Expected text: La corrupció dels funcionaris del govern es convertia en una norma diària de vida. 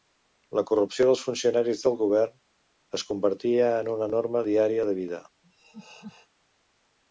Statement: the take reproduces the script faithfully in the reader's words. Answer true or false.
true